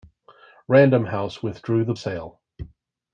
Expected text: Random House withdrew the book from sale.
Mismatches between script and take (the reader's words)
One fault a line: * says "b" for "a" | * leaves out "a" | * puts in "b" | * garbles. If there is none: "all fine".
* leaves out "book from"